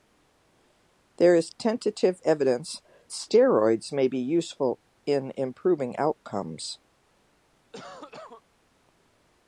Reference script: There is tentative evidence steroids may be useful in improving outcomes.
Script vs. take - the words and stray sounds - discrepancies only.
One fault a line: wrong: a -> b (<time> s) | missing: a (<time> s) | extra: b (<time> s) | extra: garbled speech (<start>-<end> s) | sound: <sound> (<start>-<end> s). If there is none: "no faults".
sound: cough (7.7-8.4 s)